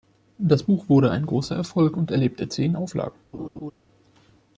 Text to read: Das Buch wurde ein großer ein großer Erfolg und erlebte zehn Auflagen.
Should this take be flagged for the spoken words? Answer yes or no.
yes